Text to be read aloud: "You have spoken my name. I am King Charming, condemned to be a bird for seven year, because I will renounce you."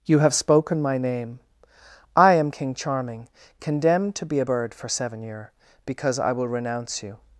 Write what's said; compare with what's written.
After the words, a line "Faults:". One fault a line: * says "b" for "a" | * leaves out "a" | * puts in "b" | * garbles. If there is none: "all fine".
"You have spoken my name. I am King Charming, condemned to be a bird for seven year, because I will renounce you."
Faults:
all fine